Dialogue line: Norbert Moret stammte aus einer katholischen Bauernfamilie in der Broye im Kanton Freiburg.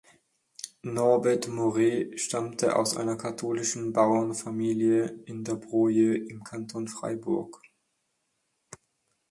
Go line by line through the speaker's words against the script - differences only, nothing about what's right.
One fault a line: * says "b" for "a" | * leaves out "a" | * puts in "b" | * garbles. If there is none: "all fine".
all fine